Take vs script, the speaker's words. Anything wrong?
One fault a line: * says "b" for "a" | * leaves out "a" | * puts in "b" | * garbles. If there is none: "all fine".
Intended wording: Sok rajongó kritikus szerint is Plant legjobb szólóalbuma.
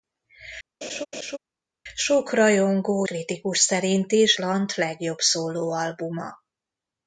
all fine